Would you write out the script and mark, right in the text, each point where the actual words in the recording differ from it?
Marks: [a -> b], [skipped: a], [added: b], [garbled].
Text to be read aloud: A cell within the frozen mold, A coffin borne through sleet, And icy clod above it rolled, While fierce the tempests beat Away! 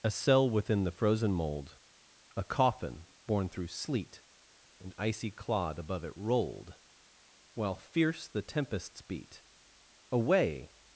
A cell within the frozen mold, A coffin borne through sleet, And icy clod above it rolled, While fierce the tempests beat Away!